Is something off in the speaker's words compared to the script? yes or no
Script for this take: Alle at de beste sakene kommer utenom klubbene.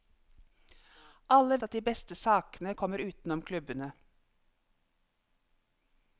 no